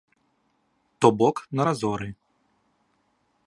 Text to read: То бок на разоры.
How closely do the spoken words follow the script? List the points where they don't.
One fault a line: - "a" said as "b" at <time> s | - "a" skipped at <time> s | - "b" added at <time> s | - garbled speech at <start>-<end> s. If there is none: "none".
none